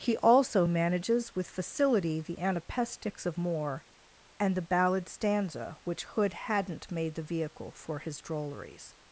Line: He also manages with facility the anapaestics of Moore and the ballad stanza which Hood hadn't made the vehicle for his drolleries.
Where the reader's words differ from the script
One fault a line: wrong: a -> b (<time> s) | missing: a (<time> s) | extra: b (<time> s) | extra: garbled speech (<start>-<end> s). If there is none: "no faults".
no faults